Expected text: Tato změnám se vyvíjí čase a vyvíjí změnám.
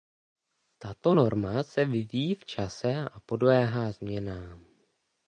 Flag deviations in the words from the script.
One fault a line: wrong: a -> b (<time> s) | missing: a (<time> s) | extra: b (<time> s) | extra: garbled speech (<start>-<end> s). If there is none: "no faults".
wrong: změnám -> norma (1.1 s)
extra: v (2.3 s)
wrong: vyvíjí -> podléhá (3.2 s)